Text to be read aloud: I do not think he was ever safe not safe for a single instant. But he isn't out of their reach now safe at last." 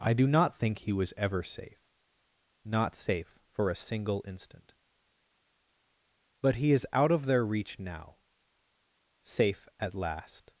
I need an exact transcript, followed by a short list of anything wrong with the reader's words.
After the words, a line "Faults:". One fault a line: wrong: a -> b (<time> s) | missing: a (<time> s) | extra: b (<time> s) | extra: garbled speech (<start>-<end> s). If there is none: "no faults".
I do not think he was ever safe not safe for a single instant. But he is out of their reach now safe at last."
Faults:
wrong: isn't -> is (6.7 s)